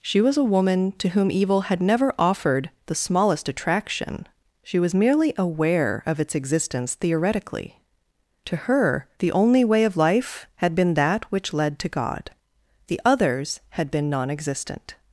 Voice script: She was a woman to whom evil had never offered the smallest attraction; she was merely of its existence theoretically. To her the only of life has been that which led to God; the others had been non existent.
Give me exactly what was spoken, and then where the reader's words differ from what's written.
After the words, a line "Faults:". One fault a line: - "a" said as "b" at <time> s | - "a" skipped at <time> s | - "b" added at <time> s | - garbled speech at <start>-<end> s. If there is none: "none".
She was a woman to whom evil had never offered the smallest attraction; she was merely aware of its existence theoretically. To her the only way of life had been that which led to God; the others had been non existent.
Faults:
- "aware" added at 5.4 s
- "way" added at 9.6 s
- "has" said as "had" at 10.6 s